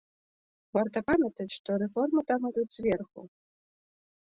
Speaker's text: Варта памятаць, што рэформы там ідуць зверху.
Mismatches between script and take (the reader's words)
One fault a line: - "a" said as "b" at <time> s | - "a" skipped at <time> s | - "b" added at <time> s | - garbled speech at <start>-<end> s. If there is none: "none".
none